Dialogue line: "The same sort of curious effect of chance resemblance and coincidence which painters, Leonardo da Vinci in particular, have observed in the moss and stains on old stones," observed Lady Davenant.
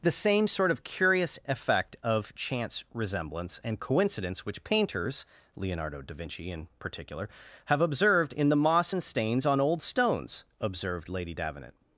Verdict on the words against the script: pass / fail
pass